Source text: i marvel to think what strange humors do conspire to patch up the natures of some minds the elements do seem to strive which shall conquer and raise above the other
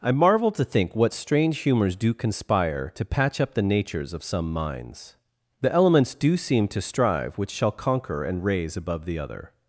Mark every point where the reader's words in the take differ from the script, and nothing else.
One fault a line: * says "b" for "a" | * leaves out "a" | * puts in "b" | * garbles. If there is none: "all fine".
all fine